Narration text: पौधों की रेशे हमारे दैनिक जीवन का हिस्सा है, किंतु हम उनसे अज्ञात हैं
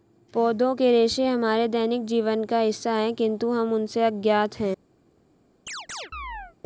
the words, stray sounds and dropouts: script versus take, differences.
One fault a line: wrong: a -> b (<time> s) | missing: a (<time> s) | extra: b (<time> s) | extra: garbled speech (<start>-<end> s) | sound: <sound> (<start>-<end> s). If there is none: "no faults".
wrong: की -> के (0.7 s)
sound: chirp (5.7-6.6 s)